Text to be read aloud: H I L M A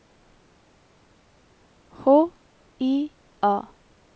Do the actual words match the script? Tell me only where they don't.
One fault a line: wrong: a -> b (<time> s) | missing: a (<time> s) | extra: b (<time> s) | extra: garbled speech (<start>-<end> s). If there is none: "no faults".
missing: L M (3.1 s)